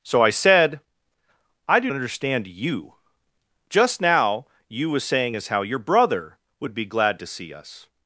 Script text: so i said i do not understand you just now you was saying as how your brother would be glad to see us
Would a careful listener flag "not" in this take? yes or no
yes